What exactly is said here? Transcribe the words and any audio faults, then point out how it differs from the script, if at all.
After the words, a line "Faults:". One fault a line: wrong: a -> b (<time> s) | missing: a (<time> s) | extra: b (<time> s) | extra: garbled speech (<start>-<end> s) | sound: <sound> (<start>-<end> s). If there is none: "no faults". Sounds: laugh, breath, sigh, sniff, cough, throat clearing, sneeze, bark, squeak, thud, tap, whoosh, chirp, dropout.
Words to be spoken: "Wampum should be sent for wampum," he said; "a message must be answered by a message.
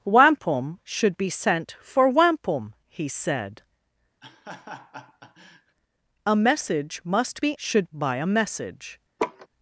"Wampum should be sent for wampum," he said; "a message must be should by a message.
Faults:
sound: laugh (4.2-5.8 s)
wrong: answered -> should (7.5 s)
sound: laugh (9.2-9.5 s)